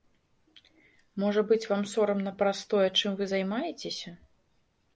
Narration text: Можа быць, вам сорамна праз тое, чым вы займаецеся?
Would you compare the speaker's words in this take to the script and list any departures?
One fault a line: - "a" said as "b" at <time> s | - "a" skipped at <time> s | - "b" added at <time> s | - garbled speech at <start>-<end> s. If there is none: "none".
none